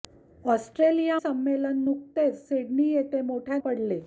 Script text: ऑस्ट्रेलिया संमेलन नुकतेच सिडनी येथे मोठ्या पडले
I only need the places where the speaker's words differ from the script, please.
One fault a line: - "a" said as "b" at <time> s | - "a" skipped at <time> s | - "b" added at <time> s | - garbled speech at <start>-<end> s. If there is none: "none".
none